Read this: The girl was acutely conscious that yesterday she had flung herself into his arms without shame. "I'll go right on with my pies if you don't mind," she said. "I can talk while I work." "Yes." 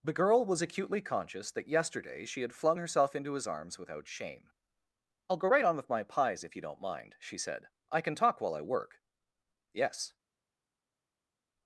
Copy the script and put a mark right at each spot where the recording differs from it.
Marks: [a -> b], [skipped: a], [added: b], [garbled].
The girl was acutely conscious that yesterday she had flung herself into his arms without shame. "I'll go right on with my pies if you don't mind," she said. "I can talk while I work." "Yes."